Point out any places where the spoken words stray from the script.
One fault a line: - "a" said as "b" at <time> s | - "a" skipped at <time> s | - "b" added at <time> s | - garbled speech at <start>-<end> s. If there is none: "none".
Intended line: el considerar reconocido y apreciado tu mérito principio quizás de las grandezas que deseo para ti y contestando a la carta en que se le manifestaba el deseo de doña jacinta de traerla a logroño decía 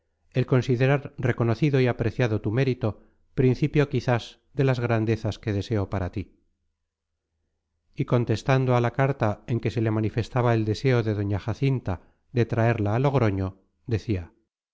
none